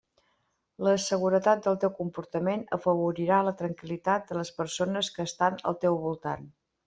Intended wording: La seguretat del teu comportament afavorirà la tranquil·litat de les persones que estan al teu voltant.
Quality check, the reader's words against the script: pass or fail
pass